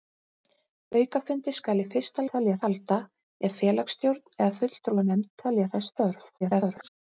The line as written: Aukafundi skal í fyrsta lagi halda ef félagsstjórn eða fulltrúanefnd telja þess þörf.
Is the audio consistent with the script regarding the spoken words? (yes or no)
no